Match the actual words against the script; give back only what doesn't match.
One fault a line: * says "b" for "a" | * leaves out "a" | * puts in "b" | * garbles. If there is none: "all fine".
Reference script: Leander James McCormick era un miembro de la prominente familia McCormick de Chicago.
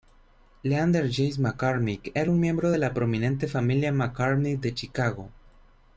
all fine